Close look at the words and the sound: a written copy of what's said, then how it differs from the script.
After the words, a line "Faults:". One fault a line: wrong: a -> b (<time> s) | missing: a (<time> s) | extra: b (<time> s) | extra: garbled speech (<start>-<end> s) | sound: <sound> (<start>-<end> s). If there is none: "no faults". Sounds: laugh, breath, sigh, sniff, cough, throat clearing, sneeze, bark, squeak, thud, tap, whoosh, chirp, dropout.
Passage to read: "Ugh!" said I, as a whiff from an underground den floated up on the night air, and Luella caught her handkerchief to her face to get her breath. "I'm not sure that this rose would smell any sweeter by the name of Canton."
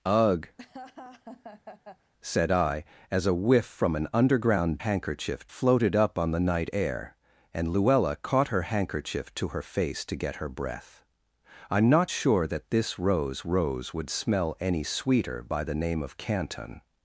"Ugh!" said I, as a whiff from an underground handkerchief floated up on the night air, and Luella caught her handkerchief to her face to get her breath. "I'm not sure that this rose rose would smell any sweeter by the name of Canton."
Faults:
sound: laugh (0.6-2.1 s)
wrong: den -> handkerchief (4.8 s)
extra: rose (13.4 s)